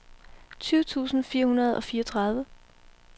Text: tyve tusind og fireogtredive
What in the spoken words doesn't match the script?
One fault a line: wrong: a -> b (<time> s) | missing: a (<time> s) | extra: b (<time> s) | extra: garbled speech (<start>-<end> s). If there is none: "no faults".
extra: fire hundrede (1.2 s)